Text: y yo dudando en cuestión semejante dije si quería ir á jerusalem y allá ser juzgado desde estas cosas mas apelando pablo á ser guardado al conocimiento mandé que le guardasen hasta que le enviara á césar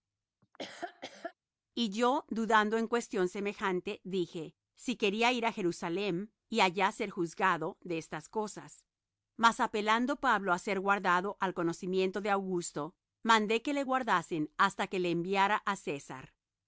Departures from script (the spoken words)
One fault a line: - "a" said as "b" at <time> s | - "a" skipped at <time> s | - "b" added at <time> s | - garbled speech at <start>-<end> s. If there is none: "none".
- "desde" said as "de" at 7.8 s
- "de augusto" added at 12.2 s